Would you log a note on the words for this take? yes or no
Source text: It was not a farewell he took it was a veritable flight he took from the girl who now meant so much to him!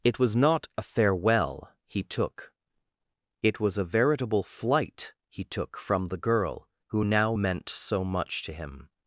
no